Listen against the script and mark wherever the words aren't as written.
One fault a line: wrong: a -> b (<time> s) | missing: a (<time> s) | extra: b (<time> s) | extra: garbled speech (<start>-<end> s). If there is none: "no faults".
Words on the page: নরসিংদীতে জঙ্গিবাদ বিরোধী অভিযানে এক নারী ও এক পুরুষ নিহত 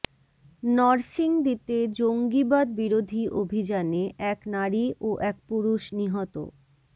no faults